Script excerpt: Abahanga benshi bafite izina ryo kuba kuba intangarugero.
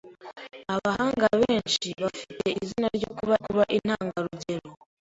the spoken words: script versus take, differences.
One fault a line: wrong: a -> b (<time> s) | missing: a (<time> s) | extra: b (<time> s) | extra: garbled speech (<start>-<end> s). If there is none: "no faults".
no faults